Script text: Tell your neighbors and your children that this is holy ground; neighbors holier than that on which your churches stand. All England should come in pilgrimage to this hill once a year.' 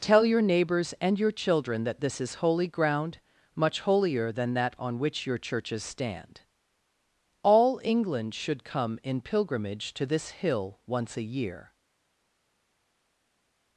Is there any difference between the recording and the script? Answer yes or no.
yes